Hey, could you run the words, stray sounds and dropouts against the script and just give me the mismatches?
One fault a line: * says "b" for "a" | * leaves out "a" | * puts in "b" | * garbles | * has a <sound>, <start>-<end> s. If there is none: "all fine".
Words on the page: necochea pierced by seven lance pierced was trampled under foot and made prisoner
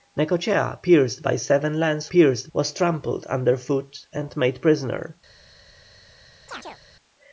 * has a chirp, 6.5-6.8 s